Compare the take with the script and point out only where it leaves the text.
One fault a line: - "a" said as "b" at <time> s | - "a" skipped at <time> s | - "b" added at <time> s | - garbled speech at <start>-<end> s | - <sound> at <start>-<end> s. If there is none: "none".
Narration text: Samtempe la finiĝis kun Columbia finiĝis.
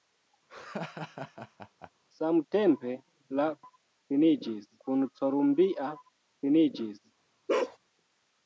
- laugh at 0.5-1.9 s
- bark at 7.5-7.8 s